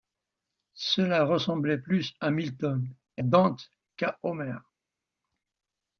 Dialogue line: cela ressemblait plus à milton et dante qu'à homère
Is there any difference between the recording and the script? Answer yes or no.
no